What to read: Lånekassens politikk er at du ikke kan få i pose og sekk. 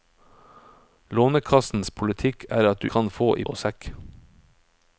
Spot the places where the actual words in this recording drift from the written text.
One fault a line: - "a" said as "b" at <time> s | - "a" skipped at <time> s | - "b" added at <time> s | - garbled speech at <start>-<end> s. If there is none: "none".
- "ikke" skipped at 2.9 s
- "pose" skipped at 3.5 s